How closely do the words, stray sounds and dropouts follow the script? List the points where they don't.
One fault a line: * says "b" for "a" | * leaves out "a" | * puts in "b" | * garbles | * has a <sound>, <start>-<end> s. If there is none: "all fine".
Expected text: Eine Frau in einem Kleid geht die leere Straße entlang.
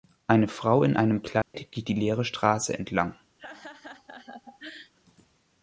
* has a dropout, 1.4-1.5 s
* has a laugh, 3.4-4.9 s